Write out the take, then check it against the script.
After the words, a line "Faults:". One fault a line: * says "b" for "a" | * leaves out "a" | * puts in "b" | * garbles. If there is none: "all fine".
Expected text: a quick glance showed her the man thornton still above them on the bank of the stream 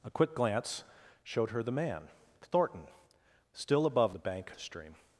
a quick glance showed her the man thornton still above the bank the stream
Faults:
* leaves out "them on"
* leaves out "of"